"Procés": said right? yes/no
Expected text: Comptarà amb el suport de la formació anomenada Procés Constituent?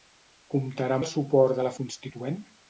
no